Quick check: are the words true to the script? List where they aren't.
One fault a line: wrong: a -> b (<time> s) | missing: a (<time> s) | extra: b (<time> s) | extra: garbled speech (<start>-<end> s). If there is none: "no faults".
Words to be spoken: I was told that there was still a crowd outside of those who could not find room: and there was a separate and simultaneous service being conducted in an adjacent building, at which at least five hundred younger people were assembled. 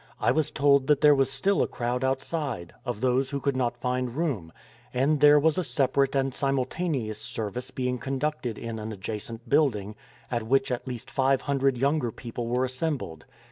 no faults